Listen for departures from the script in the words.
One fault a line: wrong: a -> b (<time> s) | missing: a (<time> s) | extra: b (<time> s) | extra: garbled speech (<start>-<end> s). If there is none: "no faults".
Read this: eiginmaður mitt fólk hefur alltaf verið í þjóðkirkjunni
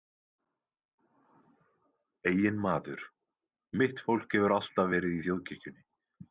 no faults